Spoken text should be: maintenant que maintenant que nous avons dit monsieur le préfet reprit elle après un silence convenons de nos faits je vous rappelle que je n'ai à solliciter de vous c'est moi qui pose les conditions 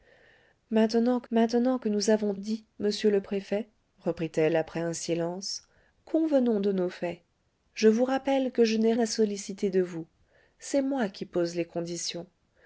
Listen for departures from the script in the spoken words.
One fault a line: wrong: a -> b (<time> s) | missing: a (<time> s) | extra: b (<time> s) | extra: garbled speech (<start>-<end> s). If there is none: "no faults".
no faults